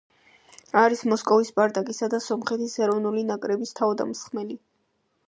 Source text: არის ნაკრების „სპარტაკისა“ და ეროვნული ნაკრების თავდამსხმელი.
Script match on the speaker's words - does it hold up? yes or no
no